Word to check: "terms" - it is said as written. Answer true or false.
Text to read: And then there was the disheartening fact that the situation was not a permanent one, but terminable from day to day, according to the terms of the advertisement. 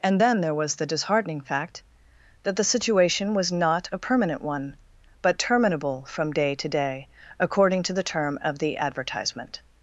false